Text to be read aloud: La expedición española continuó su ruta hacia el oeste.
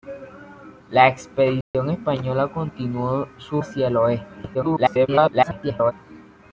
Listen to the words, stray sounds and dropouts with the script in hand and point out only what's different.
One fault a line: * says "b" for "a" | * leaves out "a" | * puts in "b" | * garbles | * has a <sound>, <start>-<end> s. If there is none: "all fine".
* has a dropout, 1.6-1.7 s
* leaves out "ruta"
* garbles